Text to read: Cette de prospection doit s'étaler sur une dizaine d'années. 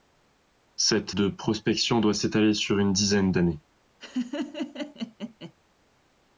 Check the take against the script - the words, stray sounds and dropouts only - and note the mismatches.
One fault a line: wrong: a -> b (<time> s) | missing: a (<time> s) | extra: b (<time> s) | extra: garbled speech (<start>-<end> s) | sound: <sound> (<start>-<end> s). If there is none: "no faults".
sound: laugh (4.0-5.5 s)